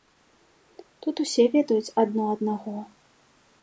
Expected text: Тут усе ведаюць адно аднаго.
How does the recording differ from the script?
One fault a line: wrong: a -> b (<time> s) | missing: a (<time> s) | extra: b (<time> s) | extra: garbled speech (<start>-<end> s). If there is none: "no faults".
no faults